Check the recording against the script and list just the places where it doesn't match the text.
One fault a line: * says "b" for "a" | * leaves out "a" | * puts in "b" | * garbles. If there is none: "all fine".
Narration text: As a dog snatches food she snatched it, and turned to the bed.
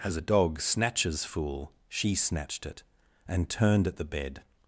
* says "fool" for "food"
* says "at" for "to"